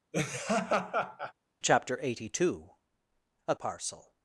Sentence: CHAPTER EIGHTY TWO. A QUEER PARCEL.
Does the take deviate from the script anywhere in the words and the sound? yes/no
yes